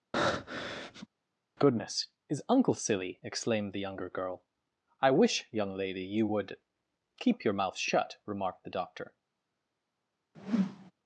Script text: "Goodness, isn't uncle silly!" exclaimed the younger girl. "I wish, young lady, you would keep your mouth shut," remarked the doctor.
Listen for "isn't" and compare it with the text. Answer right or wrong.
wrong